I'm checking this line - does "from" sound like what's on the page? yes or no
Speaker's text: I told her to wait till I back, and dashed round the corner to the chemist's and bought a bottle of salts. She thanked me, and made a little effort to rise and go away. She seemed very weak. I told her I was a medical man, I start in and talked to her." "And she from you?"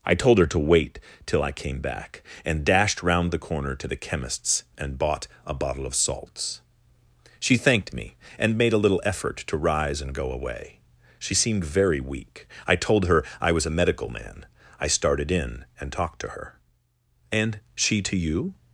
no